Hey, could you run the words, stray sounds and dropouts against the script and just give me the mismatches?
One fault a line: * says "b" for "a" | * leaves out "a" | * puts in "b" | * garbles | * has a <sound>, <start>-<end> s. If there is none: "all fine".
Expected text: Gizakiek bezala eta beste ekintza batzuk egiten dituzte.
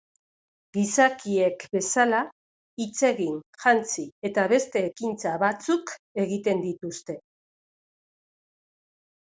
* puts in "hitz egin jantzi"